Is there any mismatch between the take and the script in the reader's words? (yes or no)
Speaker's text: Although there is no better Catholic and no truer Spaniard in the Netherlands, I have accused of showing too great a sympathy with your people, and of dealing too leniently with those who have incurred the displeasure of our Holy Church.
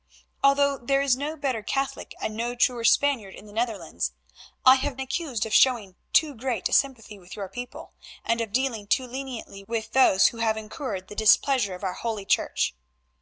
no